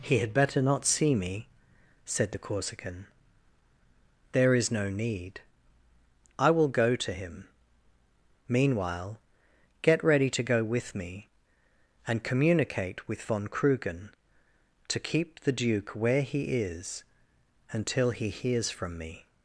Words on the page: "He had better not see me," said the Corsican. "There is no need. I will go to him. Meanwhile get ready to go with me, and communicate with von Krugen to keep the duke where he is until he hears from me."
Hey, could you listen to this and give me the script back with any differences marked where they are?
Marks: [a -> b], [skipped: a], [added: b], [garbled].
"He had better not see me," said the Corsican. "There is no need. I will go to him. Meanwhile get ready to go with me, and communicate with von Krugen to keep the duke where he is until he hears from me."